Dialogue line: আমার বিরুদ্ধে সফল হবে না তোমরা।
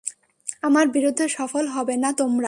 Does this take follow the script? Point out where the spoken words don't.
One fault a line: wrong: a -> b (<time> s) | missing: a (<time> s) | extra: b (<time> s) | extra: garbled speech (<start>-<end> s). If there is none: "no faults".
no faults